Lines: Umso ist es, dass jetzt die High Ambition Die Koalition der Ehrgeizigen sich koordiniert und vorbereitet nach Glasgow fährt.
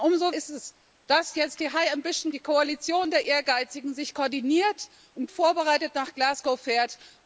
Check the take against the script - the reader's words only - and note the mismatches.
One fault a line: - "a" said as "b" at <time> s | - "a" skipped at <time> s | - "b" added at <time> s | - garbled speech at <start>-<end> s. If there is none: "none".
none